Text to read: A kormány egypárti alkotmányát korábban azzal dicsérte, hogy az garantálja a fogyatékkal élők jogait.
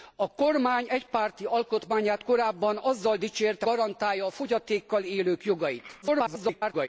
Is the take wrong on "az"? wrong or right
wrong